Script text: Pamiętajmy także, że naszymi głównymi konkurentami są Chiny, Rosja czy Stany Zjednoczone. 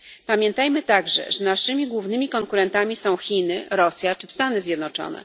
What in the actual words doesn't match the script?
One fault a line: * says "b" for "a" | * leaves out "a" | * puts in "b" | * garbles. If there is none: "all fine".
all fine